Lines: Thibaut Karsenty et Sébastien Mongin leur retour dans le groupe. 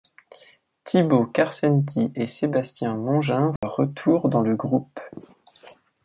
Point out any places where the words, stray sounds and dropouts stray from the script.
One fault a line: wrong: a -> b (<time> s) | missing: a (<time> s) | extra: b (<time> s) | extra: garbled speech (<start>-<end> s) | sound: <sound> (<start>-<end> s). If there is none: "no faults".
sound: dropout (3.6-3.6 s)